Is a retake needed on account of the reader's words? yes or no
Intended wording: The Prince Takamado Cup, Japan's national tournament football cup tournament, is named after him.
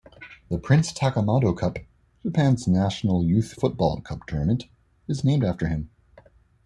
yes